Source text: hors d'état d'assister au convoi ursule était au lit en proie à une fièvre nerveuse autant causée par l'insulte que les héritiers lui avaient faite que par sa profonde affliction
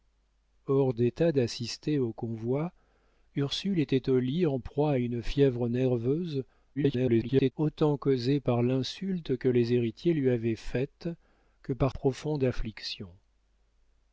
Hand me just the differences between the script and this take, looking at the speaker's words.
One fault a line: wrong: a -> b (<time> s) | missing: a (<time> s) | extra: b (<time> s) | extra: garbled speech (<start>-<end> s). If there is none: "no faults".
extra: garbled speech (6.8-7.5 s)
missing: sa (11.9 s)